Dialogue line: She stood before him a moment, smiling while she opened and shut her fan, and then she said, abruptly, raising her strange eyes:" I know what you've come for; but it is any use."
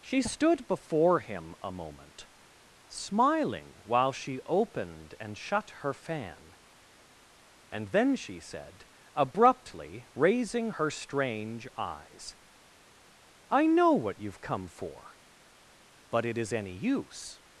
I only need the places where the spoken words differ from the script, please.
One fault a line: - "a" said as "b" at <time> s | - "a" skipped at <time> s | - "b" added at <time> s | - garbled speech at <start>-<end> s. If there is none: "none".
none